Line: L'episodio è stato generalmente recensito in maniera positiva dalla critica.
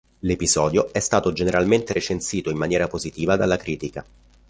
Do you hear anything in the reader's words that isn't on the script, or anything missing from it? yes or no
no